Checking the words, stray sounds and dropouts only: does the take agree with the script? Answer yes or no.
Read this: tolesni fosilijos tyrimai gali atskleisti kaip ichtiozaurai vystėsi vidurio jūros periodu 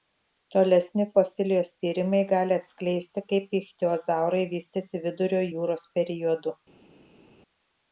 yes